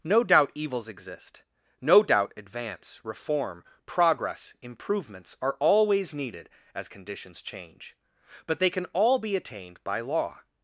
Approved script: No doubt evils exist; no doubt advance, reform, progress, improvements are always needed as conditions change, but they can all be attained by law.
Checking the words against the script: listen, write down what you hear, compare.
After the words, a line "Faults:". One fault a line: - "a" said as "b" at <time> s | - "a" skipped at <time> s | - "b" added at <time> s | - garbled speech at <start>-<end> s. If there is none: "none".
No doubt evils exist; no doubt advance, reform, progress, improvements are always needed as conditions change, but they can all be attained by law.
Faults:
none